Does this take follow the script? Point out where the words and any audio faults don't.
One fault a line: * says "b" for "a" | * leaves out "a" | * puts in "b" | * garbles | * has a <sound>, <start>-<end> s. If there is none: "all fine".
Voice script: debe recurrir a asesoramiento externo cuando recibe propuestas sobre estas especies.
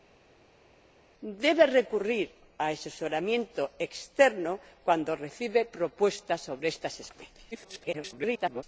* garbles